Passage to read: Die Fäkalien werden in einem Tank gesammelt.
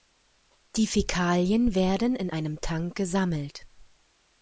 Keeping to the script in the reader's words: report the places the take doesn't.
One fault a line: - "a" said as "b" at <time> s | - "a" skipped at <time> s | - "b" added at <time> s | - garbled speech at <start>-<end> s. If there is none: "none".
none